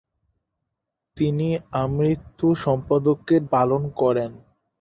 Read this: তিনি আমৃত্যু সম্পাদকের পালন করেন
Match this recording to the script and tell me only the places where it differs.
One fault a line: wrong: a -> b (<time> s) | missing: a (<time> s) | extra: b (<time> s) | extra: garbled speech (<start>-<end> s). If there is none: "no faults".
no faults